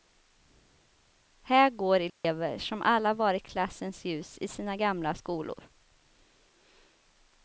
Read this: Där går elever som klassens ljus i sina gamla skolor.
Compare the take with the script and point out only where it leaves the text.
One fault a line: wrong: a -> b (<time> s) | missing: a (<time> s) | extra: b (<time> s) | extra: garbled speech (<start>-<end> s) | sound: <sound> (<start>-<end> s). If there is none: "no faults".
wrong: Där -> Här (1.4 s)
sound: dropout (2.1-2.2 s)
extra: alla varit (2.8 s)